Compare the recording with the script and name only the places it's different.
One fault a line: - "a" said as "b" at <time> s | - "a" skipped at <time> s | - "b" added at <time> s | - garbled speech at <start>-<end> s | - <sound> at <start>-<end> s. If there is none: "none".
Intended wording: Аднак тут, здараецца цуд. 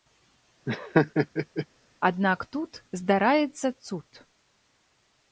- laugh at 0.7-1.7 s